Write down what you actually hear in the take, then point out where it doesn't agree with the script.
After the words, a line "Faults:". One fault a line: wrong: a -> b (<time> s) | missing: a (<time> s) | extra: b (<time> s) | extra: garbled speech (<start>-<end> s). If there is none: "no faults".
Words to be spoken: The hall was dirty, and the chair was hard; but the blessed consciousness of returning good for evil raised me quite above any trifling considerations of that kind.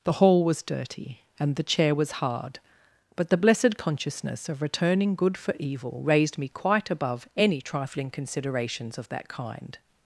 The hall was dirty, and the chair was hard; but the blessed consciousness of returning good for evil raised me quite above any trifling considerations of that kind.
Faults:
no faults